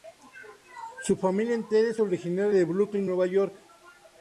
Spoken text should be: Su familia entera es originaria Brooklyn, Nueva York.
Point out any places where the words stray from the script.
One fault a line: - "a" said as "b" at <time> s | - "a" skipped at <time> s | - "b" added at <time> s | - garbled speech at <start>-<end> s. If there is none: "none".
- "de" added at 2.5 s